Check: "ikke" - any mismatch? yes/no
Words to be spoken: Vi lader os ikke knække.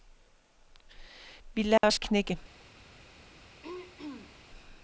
yes